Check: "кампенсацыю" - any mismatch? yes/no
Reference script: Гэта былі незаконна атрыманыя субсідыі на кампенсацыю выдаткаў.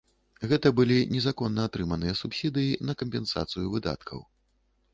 no